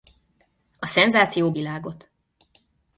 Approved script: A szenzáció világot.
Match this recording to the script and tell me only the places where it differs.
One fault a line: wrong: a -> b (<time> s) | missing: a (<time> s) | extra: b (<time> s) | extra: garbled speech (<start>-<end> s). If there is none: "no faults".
no faults